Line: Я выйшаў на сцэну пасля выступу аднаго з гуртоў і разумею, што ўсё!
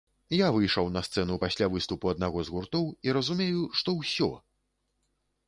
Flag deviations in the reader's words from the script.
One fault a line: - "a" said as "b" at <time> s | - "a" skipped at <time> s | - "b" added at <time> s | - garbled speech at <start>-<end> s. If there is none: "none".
none